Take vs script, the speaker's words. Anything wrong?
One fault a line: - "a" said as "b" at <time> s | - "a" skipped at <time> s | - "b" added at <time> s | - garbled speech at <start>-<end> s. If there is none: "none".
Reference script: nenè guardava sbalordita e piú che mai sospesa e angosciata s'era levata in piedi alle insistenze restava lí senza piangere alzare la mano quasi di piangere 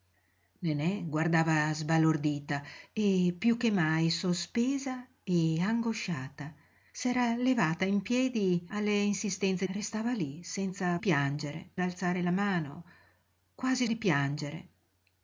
none